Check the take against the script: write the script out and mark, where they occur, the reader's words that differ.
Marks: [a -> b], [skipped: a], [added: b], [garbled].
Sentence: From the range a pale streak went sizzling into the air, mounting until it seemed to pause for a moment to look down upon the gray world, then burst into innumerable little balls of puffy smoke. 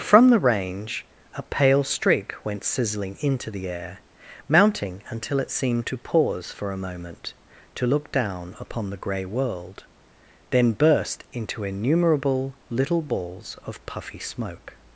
From the range a pale streak went sizzling into the air, mounting until it seemed to pause for a moment to look down upon the gray world, then burst into innumerable little balls of puffy smoke.